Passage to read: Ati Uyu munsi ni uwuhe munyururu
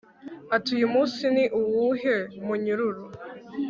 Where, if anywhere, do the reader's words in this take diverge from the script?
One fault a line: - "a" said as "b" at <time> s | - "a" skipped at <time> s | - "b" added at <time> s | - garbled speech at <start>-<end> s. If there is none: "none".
none